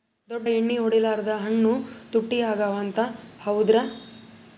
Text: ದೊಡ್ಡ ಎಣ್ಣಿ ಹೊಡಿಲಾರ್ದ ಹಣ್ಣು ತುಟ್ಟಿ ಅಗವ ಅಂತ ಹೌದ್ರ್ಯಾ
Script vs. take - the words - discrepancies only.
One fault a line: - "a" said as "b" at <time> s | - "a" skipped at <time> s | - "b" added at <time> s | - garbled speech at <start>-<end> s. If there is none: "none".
none